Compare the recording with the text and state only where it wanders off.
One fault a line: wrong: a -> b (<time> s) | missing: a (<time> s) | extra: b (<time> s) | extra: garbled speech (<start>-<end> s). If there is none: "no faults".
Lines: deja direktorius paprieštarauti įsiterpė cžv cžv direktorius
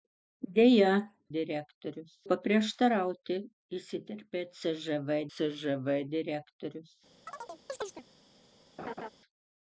no faults